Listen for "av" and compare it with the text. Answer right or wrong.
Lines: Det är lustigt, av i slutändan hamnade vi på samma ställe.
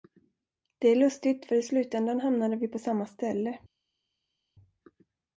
wrong